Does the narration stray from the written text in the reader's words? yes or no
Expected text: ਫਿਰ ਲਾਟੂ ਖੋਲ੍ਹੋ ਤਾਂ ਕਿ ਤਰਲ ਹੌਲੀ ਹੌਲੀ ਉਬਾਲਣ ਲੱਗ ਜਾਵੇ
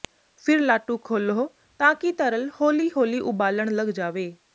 no